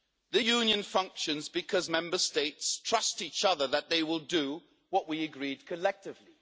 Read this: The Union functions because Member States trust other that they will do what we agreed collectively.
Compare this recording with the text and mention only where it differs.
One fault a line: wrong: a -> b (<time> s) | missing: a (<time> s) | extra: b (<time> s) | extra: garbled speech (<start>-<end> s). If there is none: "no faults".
extra: each (3.2 s)